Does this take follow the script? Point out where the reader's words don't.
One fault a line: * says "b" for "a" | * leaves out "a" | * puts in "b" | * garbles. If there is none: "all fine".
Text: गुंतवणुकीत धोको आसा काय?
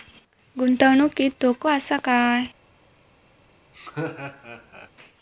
all fine